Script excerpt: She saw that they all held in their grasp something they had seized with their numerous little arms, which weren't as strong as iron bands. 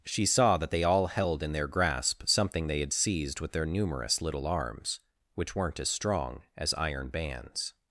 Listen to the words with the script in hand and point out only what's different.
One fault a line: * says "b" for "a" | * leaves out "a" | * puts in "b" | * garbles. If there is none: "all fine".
all fine